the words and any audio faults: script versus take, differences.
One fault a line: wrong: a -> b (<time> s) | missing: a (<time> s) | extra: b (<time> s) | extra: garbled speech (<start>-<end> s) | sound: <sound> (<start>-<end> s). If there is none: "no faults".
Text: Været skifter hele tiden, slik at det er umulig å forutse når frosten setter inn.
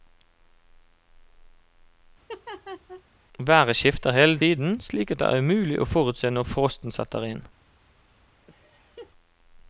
sound: laugh (2.3-3.0 s)
sound: laugh (8.5-9.1 s)